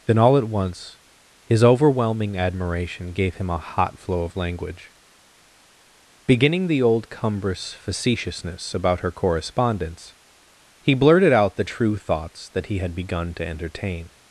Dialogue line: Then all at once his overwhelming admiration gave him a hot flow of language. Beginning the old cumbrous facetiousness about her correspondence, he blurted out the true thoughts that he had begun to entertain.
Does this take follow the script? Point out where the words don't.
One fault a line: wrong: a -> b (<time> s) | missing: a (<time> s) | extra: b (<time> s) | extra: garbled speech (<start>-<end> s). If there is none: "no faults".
no faults